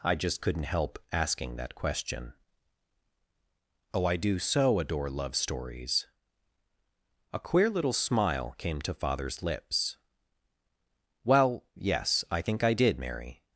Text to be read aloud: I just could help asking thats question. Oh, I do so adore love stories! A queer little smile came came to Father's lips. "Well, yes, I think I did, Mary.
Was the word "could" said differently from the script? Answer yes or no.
yes